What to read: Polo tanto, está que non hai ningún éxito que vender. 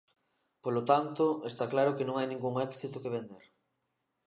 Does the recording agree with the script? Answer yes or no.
no